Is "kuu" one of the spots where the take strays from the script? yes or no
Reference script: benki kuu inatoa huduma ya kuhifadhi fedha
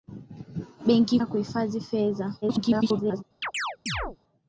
yes